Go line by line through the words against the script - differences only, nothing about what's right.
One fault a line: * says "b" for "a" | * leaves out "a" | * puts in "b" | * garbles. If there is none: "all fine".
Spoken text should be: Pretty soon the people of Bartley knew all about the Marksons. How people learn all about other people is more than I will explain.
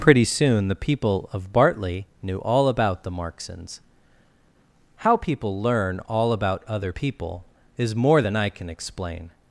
* says "can" for "will"